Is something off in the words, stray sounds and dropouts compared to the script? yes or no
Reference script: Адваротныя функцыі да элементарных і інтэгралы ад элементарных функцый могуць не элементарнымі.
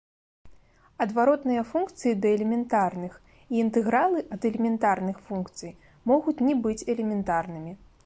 yes